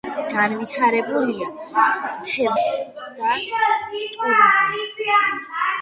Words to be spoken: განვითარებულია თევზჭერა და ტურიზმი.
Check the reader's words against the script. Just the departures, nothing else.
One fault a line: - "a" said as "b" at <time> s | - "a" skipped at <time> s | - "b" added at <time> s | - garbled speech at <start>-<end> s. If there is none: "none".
- "და" skipped at 2.5 s